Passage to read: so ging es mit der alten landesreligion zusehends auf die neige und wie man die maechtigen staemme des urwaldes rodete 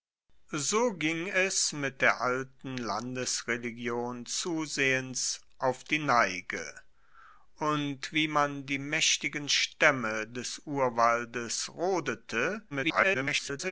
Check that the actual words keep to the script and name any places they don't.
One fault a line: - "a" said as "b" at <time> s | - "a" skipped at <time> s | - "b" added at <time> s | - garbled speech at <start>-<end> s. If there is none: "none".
- garbled speech at 12.7-13.7 s